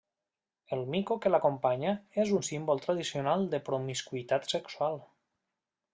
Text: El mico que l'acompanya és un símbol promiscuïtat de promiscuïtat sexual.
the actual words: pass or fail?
fail